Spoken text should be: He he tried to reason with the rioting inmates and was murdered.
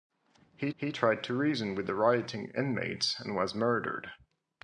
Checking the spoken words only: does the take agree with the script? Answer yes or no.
yes